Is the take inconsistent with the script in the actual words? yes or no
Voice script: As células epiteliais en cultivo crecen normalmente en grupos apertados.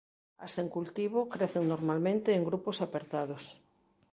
yes